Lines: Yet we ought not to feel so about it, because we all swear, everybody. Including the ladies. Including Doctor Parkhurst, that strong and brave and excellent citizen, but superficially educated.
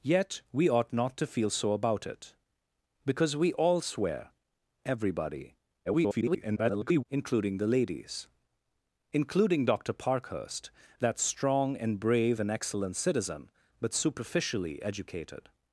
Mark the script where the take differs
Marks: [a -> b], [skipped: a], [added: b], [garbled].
Yet we ought not to feel so about it, because we all swear, everybody. [garbled] Including the ladies. Including Doctor Parkhurst, that strong and brave and excellent citizen, but superficially educated.